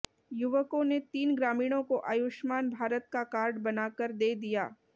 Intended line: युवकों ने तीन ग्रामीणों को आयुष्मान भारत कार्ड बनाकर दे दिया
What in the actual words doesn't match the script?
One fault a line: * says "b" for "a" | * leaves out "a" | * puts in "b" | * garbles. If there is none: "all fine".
* puts in "का"